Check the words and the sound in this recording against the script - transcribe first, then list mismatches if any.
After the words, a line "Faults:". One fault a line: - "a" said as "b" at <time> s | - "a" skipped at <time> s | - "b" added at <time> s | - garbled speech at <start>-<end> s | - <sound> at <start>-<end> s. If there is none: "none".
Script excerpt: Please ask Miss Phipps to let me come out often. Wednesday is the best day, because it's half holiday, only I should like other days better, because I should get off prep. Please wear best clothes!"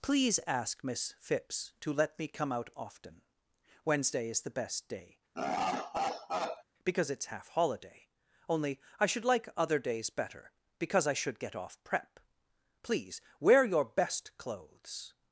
Please ask Miss Phipps to let me come out often. Wednesday is the best day, because it's half holiday, only I should like other days better, because I should get off prep. Please wear your best clothes!"
Faults:
- laugh at 5.4-6.6 s
- "your" added at 13.6 s